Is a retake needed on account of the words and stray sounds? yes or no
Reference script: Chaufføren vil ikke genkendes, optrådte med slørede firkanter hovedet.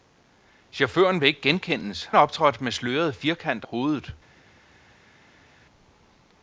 no